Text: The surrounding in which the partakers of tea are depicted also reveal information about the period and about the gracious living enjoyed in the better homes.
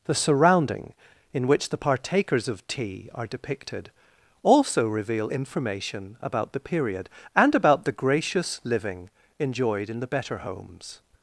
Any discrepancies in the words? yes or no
no